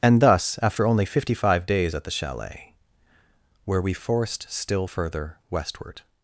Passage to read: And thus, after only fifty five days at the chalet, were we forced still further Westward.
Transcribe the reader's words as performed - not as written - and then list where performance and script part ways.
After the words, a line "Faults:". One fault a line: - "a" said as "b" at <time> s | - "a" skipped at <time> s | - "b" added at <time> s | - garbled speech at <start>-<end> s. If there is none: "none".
And thus, after only fifty five days at the chalet, were we forced still further Westward.
Faults:
none